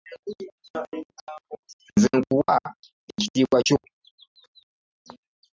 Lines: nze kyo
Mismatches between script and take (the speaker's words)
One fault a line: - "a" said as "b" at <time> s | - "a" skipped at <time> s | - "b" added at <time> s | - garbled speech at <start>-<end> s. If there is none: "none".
- "nkuwa ekitiibwa" added at 2.2 s